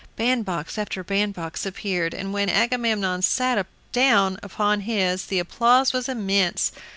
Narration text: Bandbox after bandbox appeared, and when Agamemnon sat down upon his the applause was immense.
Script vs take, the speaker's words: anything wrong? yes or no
no